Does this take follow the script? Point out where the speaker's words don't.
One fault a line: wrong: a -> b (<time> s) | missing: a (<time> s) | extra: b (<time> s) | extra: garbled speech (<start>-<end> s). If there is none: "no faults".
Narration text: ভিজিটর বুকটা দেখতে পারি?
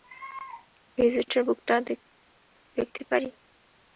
no faults